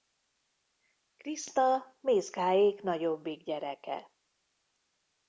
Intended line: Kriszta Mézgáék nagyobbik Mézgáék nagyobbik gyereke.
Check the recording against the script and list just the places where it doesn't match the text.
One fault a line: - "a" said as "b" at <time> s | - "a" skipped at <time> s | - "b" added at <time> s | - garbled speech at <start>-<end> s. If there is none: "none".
- "Mézgáék nagyobbik" skipped at 3.4 s